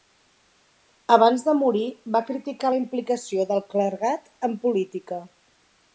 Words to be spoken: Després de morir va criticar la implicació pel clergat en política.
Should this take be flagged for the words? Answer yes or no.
yes